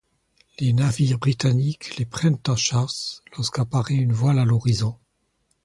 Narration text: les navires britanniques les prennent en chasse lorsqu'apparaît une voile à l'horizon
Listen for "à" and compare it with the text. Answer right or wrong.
right